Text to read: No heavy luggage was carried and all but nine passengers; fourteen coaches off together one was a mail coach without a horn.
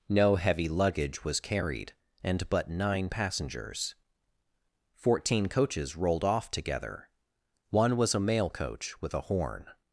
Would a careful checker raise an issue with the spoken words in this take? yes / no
yes